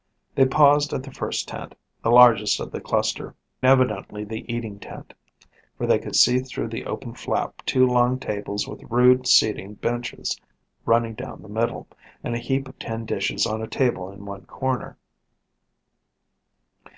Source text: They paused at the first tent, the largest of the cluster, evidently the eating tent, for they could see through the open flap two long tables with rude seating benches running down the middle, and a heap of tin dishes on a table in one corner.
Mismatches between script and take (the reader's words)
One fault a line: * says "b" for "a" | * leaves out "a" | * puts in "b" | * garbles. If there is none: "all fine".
all fine